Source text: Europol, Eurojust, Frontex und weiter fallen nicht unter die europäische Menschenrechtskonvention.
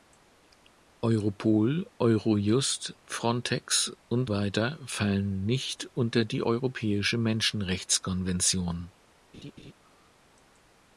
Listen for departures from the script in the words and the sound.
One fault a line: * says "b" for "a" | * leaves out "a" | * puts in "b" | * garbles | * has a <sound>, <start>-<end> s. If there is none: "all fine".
* has a laugh, 9.3-9.7 s